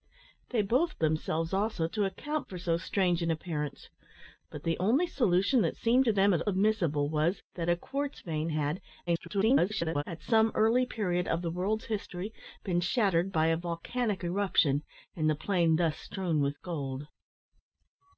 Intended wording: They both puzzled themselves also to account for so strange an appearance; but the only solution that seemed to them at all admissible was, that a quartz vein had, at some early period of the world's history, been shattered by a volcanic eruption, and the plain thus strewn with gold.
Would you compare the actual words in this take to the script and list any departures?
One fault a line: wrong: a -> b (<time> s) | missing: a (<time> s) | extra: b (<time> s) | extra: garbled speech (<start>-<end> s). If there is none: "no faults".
missing: puzzled (1.0 s)
missing: all (6.4 s)
extra: garbled speech (9.1-10.0 s)